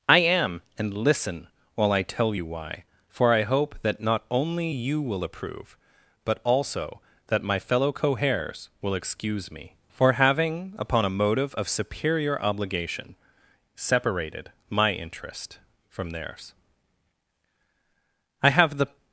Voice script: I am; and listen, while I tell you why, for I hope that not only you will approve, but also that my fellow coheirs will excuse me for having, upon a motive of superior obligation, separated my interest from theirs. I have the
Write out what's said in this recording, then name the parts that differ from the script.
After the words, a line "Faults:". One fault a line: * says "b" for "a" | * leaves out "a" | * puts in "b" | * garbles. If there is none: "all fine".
I am; and listen, while I tell you why, for I hope that not only you will approve, but also that my fellow coheirs will excuse me for having, upon a motive of superior obligation, separated my interest from theirs. I have the
Faults:
all fine